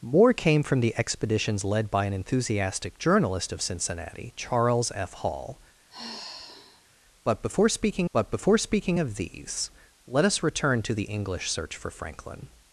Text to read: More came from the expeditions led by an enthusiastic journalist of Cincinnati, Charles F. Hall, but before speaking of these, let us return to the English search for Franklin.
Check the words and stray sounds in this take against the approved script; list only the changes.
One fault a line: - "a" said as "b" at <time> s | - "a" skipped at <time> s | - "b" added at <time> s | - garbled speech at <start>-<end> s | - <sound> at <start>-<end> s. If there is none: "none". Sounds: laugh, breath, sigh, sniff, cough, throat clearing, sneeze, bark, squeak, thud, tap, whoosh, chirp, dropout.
- sigh at 5.9-6.8 s
- "but before speaking" added at 8.1 s